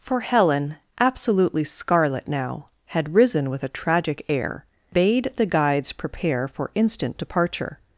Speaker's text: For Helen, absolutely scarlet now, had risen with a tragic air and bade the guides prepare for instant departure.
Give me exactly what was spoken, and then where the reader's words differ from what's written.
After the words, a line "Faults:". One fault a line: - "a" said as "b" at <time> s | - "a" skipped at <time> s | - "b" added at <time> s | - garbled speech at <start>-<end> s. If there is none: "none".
For Helen, absolutely scarlet now, had risen with a tragic air bade the guides prepare for instant departure.
Faults:
- "and" skipped at 4.7 s